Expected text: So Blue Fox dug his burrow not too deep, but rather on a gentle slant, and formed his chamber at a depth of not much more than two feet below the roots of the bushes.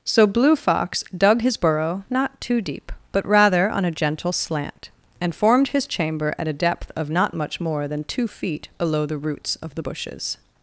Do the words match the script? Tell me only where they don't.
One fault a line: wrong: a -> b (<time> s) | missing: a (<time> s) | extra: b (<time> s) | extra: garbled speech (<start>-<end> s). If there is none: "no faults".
no faults